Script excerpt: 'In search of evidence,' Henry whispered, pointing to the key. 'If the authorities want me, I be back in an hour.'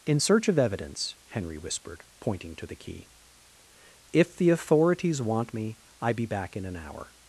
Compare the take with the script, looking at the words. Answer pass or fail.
pass